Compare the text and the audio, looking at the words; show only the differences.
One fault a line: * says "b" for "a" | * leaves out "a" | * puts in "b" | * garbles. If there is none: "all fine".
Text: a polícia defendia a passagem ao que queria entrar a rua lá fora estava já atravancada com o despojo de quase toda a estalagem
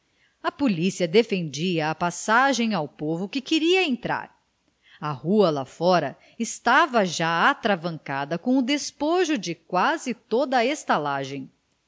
* puts in "povo"